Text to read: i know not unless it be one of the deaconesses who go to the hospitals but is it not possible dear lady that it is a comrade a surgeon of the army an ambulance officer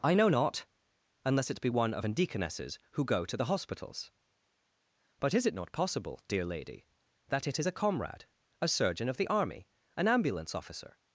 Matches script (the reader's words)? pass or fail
fail